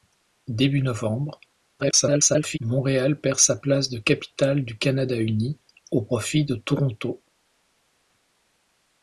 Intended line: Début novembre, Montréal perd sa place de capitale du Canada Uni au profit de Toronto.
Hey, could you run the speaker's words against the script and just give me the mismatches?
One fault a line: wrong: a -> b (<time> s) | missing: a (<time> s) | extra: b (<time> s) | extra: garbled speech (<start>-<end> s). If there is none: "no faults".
extra: garbled speech (1.8-2.6 s)